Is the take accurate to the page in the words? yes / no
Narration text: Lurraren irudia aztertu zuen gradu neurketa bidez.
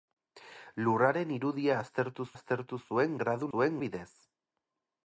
no